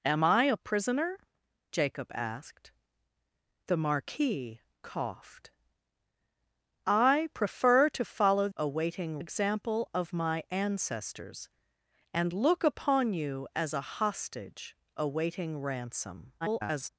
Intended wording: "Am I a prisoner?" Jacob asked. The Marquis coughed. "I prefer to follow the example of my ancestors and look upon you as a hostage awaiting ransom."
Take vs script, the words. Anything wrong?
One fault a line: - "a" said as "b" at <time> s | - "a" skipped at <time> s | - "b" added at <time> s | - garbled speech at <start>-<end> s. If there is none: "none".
- "the" said as "awaiting" at 8.6 s
- garbled speech at 16.4-16.9 s